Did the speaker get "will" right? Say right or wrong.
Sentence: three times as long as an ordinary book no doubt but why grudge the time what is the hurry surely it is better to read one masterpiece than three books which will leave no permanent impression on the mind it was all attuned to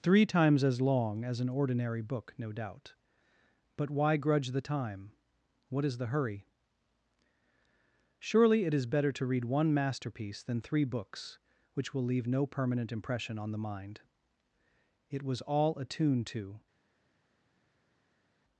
right